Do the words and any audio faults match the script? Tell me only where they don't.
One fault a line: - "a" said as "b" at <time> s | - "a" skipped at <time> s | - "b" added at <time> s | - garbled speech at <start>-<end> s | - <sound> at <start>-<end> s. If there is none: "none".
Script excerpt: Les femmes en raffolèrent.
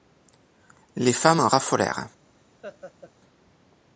- laugh at 2.6-3.1 s